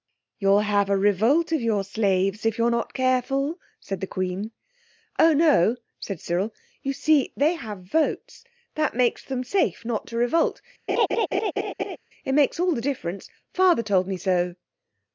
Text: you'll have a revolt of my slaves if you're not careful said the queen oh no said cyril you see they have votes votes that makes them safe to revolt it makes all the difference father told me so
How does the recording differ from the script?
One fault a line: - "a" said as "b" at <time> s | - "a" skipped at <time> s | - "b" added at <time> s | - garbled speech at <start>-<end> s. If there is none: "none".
- "my" said as "your" at 1.6 s
- "votes" skipped at 8.4 s
- "not" added at 9.8 s